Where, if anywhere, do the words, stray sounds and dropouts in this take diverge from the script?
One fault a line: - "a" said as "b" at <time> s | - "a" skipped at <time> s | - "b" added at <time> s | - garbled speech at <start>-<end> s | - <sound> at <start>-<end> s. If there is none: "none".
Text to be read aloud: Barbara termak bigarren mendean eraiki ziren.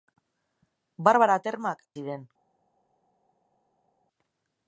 - "bigarren mendean eraiki" skipped at 1.8 s